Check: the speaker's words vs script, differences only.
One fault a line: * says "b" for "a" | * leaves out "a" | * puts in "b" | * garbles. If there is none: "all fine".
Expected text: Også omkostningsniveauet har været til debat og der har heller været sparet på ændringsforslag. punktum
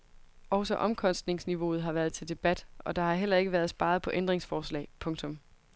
* puts in "ikke"